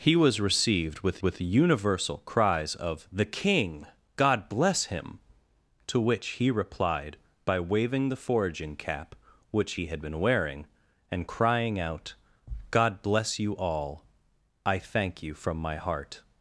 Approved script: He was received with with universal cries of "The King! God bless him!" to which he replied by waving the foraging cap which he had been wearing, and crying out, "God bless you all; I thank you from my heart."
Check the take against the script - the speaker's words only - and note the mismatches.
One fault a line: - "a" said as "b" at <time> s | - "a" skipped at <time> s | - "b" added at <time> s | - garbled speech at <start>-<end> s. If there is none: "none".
none